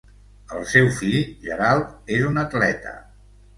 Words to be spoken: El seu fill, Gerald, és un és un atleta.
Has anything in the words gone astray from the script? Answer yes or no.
yes